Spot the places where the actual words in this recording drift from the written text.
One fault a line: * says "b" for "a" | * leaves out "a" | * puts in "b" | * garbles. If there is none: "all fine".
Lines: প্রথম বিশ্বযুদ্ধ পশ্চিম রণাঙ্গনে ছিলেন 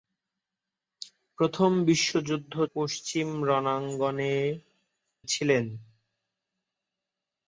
all fine